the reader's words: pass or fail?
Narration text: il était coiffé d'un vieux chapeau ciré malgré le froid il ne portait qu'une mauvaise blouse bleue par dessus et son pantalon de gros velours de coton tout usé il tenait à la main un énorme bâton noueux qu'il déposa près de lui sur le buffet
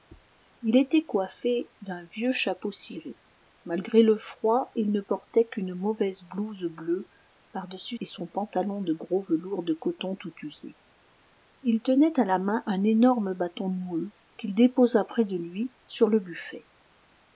pass